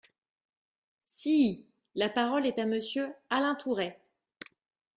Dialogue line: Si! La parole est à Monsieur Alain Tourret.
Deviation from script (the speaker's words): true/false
false